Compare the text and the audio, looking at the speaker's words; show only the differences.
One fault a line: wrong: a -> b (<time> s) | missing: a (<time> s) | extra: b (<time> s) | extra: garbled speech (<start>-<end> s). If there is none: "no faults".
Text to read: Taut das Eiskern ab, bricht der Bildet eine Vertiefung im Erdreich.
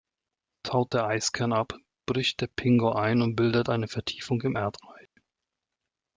wrong: das -> der (0.9 s)
extra: Pingo ein und (2.5 s)